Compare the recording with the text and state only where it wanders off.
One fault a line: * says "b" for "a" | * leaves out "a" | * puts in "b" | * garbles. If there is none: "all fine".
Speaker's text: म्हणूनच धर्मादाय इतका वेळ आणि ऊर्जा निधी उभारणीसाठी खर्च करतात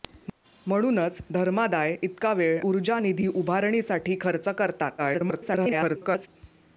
* leaves out "आणि"
* garbles